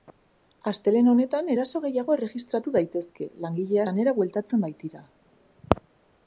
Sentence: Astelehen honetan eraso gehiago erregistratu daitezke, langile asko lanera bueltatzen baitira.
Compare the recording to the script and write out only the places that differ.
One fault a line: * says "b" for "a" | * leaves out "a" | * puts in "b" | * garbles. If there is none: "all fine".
* leaves out "asko"